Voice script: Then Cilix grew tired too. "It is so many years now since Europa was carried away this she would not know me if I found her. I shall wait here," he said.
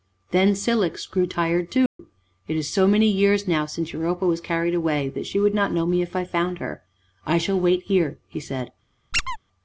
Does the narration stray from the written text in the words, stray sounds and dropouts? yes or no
yes